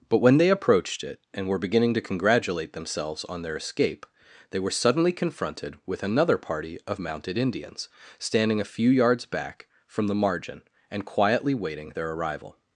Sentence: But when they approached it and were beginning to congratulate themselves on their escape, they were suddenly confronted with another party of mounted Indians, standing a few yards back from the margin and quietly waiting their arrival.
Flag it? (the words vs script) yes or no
no